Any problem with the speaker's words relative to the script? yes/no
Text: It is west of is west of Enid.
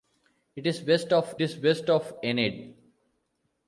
no